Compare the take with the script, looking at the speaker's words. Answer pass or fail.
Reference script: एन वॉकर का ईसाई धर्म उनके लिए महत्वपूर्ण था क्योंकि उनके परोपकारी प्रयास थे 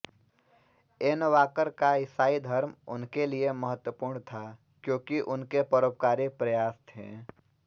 pass